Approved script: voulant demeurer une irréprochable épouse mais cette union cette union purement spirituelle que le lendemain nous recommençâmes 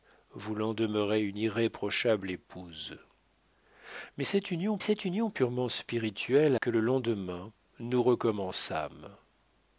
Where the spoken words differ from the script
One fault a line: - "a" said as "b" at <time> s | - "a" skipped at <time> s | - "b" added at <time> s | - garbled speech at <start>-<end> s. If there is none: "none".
none